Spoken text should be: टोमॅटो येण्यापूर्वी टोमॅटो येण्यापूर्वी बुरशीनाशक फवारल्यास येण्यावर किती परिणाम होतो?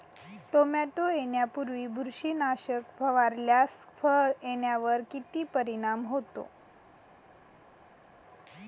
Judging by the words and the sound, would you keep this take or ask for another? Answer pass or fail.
fail